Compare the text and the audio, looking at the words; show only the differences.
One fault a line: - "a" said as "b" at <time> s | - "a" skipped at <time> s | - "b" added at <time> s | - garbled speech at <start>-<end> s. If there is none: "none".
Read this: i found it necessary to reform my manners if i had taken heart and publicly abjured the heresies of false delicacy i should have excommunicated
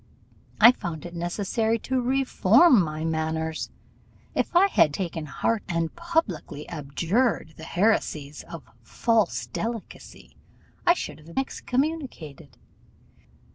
none